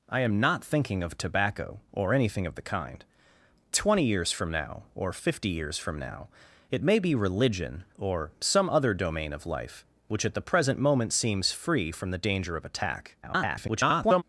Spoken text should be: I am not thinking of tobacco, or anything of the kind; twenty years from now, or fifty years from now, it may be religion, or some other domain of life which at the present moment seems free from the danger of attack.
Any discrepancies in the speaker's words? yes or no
yes